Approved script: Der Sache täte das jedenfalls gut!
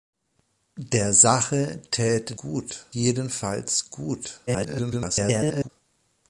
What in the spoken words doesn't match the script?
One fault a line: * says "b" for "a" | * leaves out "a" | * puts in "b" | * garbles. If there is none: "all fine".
* says "gut" for "das"
* garbles